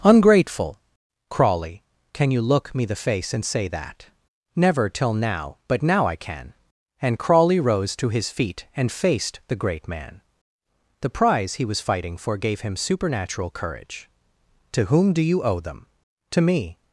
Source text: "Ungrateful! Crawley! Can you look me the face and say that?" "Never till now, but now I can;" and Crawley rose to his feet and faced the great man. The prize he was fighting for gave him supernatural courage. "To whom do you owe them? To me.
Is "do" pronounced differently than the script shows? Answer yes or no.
no